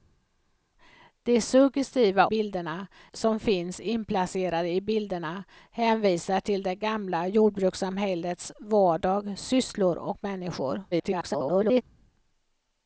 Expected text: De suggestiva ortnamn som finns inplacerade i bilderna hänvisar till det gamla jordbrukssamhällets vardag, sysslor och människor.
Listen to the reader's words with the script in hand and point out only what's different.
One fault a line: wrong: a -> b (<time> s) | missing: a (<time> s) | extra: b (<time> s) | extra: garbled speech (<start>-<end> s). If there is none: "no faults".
wrong: ortnamn -> bilderna (2.2 s)
extra: garbled speech (10.9-11.8 s)